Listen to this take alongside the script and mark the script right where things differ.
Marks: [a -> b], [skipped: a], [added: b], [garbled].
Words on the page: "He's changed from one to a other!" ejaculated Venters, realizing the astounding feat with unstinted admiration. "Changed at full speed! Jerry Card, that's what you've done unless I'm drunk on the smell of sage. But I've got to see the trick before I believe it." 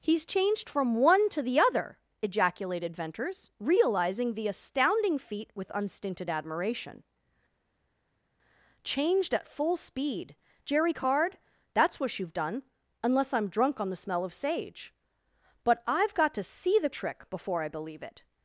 "He's changed from one to [a -> the] other!" ejaculated Venters, realizing the astounding feat with unstinted admiration. "Changed at full speed! Jerry Card, that's what you've done unless I'm drunk on the smell of sage. But I've got to see the trick before I believe it."